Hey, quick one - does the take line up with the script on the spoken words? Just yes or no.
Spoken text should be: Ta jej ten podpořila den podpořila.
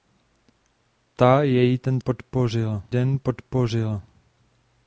yes